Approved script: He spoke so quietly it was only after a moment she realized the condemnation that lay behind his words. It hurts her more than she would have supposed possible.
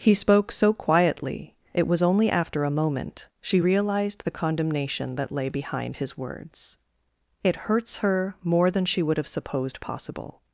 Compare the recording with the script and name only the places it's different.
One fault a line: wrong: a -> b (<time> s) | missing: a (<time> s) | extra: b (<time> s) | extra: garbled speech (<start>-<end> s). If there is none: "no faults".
no faults